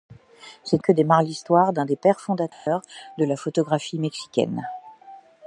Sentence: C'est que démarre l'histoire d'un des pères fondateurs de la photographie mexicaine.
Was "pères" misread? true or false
false